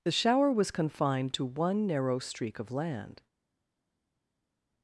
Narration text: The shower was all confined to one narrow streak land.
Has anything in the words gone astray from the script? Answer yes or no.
yes